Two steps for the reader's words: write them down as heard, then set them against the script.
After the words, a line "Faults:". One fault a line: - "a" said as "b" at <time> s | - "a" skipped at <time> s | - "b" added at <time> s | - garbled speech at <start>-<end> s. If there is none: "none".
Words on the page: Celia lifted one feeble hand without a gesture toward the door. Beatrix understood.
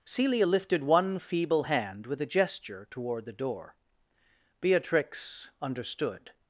Celia lifted one feeble hand with a gesture toward the door. Beatrix understood.
Faults:
- "without" said as "with" at 2.1 s